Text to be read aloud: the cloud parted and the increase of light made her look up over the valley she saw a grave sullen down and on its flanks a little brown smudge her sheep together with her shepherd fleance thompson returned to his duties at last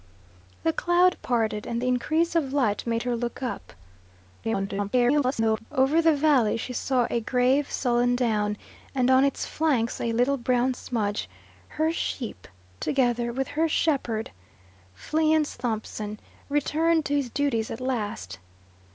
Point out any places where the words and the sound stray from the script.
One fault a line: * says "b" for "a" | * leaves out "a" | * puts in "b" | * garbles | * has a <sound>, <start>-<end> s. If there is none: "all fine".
* garbles